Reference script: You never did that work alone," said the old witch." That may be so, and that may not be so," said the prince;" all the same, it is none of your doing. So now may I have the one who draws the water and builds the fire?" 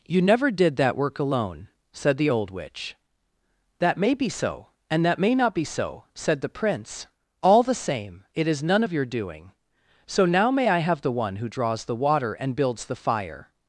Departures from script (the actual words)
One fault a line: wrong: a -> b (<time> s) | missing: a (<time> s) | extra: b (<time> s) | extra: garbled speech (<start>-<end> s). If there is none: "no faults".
no faults